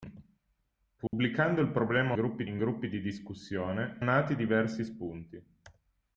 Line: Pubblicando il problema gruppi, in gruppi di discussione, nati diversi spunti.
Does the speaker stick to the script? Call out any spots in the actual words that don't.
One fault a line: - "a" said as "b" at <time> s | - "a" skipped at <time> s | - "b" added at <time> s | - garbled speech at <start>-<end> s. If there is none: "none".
none